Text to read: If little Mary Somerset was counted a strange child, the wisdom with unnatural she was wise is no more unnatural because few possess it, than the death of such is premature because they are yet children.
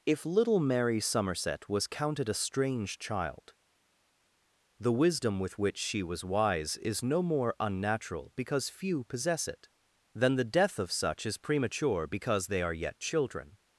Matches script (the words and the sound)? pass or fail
fail